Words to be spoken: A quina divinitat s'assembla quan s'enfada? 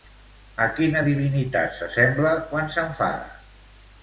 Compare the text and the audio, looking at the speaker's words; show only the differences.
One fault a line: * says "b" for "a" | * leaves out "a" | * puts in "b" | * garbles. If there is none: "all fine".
all fine